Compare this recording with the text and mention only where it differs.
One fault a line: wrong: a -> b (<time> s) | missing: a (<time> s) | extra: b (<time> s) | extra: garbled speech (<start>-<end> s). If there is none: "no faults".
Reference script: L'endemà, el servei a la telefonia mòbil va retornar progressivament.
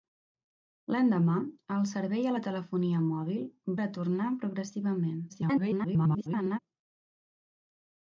missing: va (3.4 s)
extra: garbled speech (5.3-6.6 s)